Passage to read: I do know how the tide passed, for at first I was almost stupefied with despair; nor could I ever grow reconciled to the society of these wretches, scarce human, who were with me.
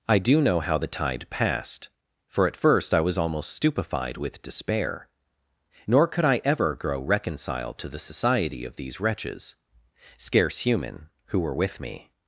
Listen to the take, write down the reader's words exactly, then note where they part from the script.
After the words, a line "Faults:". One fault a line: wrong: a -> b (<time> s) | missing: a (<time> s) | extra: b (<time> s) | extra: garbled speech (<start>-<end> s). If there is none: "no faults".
I do know how the tide passed, for at first I was almost stupefied with despair; nor could I ever grow reconciled to the society of these wretches, scarce human, who were with me.
Faults:
no faults